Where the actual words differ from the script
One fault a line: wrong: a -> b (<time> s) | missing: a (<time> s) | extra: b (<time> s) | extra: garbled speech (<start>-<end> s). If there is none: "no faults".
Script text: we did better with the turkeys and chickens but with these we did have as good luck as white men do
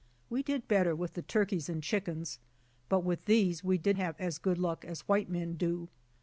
no faults